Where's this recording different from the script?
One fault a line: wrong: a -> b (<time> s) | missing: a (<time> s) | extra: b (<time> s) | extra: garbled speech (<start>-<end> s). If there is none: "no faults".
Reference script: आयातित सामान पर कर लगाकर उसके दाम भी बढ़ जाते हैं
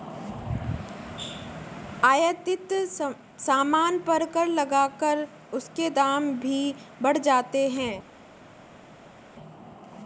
no faults